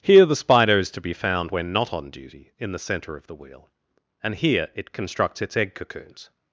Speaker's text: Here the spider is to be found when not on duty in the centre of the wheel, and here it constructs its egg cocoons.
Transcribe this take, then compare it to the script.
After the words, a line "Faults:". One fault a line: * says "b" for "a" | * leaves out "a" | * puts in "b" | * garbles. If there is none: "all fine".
Here the spider is to be found when not on duty in the centre of the wheel, and here it constructs its egg cocoons.
Faults:
all fine